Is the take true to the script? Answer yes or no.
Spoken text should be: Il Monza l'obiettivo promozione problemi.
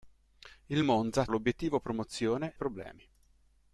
yes